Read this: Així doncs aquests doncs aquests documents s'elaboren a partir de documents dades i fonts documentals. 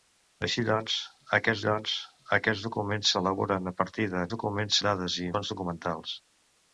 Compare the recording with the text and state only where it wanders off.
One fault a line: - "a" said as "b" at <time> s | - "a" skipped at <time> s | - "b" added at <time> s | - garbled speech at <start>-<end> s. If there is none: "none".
none